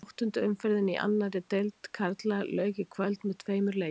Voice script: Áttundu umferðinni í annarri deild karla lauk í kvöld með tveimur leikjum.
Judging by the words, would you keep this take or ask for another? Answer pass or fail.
pass